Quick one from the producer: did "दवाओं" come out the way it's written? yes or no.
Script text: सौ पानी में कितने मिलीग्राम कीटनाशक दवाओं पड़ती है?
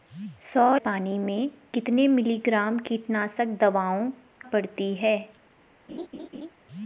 yes